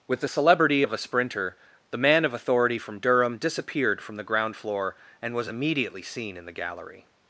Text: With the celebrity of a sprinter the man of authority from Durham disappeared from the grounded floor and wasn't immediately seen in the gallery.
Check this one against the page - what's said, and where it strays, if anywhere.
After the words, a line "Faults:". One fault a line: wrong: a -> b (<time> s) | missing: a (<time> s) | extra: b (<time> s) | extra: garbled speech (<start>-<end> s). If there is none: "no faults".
With the celebrity of a sprinter the man of authority from Durham disappeared from the ground floor and was immediately seen in the gallery.
Faults:
wrong: grounded -> ground (4.3 s)
wrong: wasn't -> was (5.3 s)